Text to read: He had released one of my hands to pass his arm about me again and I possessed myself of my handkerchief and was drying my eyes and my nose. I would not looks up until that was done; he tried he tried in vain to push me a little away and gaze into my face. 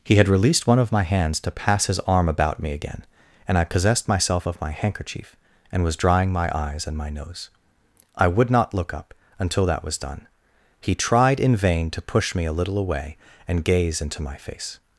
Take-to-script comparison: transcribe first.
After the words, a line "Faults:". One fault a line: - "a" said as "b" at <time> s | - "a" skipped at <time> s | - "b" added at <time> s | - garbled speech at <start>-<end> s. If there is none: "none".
He had released one of my hands to pass his arm about me again and I possessed myself of my handkerchief and was drying my eyes and my nose. I would not look up until that was done; he tried in vain to push me a little away and gaze into my face.
Faults:
- "looks" said as "look" at 8.7 s
- "he tried" skipped at 11.4 s